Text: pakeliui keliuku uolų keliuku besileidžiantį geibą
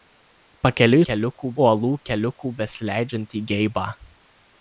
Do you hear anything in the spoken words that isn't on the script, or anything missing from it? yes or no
no